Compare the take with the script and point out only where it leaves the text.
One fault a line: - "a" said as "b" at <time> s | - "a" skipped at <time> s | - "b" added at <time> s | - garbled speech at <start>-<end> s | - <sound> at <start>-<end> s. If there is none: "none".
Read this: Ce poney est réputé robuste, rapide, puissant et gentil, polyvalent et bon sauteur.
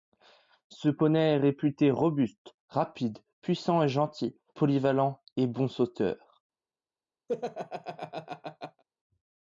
- laugh at 7.3-8.8 s